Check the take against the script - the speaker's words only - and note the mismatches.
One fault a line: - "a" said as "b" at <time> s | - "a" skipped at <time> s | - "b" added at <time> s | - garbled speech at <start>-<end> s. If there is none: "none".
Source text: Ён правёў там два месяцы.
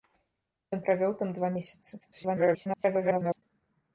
- garbled speech at 2.0-3.4 s